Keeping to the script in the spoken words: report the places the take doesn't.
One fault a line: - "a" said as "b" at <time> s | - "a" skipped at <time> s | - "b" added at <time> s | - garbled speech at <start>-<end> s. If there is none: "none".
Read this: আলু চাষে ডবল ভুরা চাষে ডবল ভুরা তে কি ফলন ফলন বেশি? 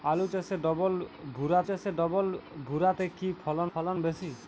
none